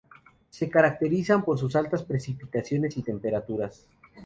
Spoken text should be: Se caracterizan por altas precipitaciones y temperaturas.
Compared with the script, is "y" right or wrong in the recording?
right